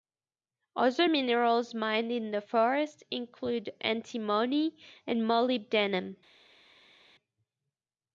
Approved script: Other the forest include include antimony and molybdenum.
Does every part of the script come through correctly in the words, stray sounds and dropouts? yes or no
no